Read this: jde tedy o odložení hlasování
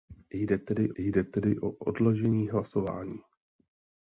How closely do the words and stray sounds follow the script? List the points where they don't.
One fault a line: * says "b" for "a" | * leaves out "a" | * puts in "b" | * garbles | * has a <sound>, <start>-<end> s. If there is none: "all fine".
* puts in "jde tedy"